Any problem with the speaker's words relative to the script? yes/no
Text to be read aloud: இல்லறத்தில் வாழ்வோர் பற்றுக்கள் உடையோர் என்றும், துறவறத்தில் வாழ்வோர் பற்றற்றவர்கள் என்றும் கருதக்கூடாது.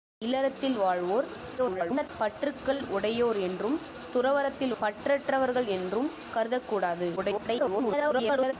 yes